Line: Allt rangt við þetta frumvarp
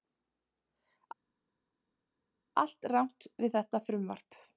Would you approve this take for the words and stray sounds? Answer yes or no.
yes